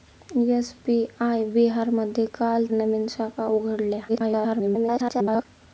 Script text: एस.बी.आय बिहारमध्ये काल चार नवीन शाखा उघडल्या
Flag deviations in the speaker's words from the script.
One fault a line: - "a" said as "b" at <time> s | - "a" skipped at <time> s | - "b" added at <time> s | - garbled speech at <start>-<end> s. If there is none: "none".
- "चार" skipped at 2.6 s
- garbled speech at 4.1-5.5 s